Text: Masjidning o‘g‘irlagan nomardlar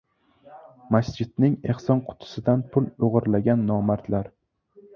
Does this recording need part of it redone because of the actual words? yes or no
yes